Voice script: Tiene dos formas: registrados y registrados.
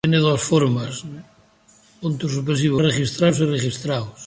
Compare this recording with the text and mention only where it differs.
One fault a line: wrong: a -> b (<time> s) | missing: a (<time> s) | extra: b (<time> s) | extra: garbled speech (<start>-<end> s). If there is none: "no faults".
no faults